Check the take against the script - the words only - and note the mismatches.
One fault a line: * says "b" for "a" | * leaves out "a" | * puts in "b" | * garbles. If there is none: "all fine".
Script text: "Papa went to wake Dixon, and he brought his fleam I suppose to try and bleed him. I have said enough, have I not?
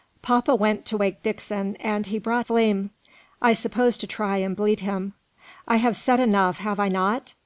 * leaves out "his"